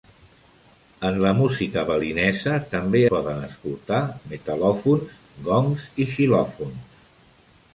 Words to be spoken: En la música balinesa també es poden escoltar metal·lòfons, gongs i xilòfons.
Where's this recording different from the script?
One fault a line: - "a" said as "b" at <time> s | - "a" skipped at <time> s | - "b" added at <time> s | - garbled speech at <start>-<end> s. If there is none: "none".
- "es" skipped at 3.0 s